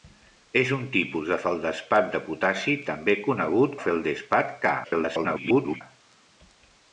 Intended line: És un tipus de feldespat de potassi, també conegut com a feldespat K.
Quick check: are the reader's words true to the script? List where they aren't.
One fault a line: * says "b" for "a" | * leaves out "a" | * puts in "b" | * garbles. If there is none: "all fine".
* leaves out "com"
* garbles